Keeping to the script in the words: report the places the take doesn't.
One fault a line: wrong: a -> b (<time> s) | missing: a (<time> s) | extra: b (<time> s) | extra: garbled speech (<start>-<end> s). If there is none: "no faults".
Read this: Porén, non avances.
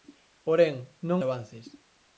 no faults